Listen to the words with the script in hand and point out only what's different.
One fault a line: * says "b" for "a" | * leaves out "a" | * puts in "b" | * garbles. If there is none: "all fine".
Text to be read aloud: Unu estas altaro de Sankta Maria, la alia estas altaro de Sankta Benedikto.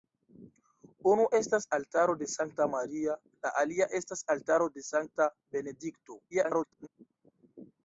* garbles